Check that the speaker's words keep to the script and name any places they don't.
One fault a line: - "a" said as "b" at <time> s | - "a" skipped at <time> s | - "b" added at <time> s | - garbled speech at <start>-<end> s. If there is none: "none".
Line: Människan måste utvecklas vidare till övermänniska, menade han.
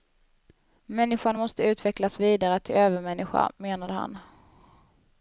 none